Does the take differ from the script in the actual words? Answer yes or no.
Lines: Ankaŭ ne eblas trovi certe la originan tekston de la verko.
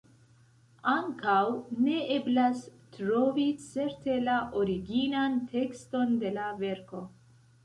no